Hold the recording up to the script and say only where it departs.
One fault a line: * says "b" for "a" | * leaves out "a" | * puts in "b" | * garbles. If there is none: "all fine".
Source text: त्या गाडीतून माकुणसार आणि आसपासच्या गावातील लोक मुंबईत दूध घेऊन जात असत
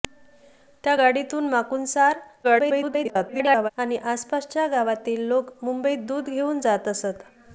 * garbles